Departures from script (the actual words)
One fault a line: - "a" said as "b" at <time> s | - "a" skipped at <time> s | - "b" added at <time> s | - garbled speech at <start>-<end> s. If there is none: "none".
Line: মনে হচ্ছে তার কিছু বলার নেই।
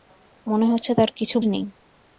- "বলার" skipped at 1.4 s